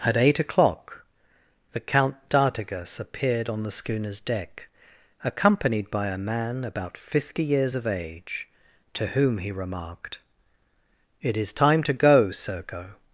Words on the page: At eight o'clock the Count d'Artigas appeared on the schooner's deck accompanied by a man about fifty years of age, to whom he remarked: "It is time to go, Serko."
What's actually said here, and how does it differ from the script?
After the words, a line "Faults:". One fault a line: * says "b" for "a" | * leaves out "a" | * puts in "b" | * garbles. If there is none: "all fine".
At eight o'clock the Count d'Artigas appeared on the schooner's deck accompanied by a man about fifty years of age, to whom he remarked: "It is time to go, Serko."
Faults:
all fine